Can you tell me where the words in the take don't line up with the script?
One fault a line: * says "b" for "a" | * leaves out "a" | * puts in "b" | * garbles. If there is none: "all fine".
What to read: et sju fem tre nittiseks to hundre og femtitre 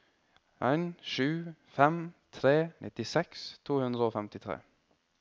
* says "en" for "et"